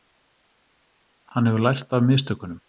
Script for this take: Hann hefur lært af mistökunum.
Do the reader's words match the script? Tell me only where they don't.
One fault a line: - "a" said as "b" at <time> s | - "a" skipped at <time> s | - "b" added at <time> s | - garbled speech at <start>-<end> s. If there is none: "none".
none